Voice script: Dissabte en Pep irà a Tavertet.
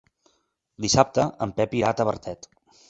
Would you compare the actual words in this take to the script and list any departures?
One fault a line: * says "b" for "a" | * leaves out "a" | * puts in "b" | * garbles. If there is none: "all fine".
all fine